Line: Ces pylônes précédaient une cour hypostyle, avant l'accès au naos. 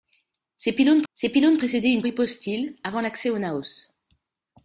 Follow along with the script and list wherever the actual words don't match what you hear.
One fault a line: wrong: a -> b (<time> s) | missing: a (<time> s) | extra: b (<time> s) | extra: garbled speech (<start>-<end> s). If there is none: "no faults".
extra: ces pylônes (1.1 s)
missing: cour (2.0 s)